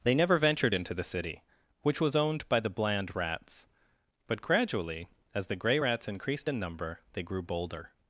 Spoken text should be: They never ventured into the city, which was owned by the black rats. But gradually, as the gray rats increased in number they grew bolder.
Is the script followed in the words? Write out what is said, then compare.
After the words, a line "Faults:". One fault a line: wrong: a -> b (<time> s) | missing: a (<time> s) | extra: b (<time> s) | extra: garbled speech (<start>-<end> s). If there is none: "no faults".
They never ventured into the city, which was owned by the bland rats. But gradually, as the gray rats increased in number they grew bolder.
Faults:
wrong: black -> bland (2.7 s)